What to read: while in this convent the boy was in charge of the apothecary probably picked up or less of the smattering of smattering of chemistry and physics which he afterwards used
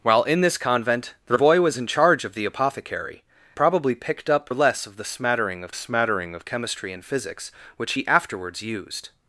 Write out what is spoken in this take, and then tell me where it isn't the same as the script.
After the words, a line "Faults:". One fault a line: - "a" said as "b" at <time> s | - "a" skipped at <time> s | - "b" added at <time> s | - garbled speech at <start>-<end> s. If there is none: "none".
while in this convent the boy was in charge of the apothecary probably picked up or less of the smattering of smattering of chemistry and physics which he afterwards used
Faults:
none